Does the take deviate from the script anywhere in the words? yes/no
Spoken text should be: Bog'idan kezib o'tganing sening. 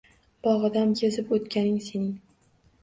no